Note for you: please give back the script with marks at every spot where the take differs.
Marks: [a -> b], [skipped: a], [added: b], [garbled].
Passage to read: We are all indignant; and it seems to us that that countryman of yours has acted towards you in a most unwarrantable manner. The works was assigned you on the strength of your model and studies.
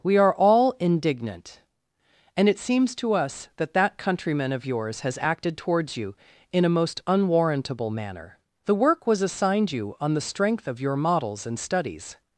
We are all indignant; and it seems to us that that countryman of yours has acted towards you in a most unwarrantable manner. The [works -> work] was assigned you on the strength of your [model -> models] and studies.